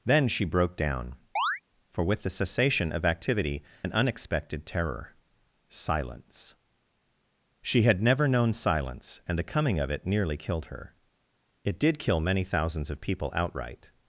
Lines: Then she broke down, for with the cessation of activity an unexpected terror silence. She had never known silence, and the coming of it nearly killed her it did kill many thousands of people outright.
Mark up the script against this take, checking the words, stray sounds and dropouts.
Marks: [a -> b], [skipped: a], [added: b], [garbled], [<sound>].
Then she broke down, [chirp] for with the cessation of activity an unexpected terror silence. She had never known silence, and the coming of it nearly killed her it did kill many thousands of people outright.